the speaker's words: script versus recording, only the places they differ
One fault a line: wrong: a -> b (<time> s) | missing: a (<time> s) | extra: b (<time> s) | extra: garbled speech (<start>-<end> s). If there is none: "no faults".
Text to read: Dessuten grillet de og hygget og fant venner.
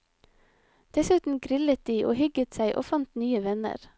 extra: seg (2.5 s)
extra: nye (3.2 s)